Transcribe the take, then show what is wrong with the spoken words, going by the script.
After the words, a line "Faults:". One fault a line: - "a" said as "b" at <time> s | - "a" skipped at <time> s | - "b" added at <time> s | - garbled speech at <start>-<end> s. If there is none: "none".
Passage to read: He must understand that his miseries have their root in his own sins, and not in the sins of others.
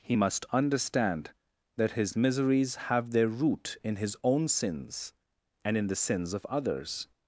He must understand that his miseries have their root in his own sins, and in the sins of others.
Faults:
- "not" skipped at 5.8 s